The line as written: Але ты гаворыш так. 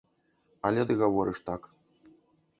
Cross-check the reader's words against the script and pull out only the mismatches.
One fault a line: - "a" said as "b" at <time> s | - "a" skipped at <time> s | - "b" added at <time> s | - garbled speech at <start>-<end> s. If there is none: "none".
none